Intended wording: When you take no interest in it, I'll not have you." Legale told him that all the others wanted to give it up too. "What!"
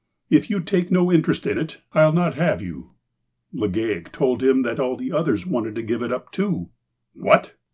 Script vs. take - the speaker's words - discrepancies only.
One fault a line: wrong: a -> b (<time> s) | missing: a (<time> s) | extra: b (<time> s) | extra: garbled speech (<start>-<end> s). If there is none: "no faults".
wrong: When -> If (0.3 s)